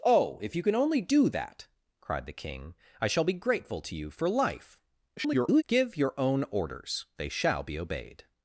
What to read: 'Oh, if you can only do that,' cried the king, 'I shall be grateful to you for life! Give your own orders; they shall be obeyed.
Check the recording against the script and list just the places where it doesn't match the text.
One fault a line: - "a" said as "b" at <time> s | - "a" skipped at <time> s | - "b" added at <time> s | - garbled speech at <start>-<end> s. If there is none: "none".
- garbled speech at 5.2-5.6 s